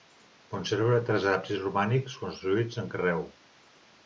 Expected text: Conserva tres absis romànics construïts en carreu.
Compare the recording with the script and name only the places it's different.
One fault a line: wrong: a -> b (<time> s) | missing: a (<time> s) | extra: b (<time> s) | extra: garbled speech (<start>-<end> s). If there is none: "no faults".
no faults